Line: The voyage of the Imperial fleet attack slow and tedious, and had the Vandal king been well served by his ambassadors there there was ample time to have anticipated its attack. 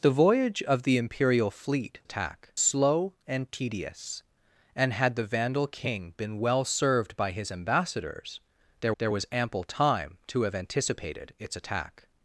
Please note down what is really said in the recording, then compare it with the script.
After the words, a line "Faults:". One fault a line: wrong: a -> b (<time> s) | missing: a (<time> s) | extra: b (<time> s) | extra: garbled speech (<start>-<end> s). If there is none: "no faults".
The voyage of the Imperial fleet attack slow and tedious, and had the Vandal king been well served by his ambassadors there there was ample time to have anticipated its attack.
Faults:
no faults